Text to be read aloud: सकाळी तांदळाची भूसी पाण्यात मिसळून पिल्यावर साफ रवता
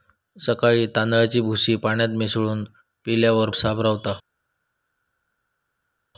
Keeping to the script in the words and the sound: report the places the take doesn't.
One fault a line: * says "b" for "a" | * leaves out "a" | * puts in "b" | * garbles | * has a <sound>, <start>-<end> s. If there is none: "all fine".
all fine